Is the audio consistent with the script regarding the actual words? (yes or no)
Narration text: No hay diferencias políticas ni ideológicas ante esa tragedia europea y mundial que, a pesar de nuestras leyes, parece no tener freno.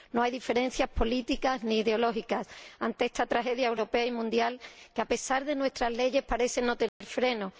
no